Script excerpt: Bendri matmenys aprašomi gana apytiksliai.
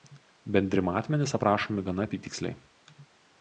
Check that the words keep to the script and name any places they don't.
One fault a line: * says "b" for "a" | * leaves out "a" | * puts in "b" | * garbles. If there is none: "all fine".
all fine